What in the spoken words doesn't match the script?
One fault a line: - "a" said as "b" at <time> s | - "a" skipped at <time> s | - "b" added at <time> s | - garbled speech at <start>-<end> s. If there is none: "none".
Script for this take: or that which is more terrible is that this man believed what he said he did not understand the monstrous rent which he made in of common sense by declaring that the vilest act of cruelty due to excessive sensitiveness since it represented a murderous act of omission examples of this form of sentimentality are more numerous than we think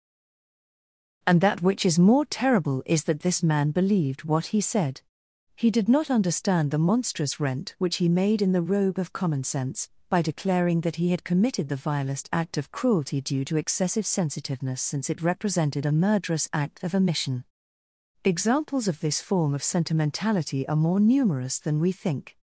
- "or" said as "and" at 1.3 s
- "the robe" added at 8.5 s
- "he had committed" added at 11.0 s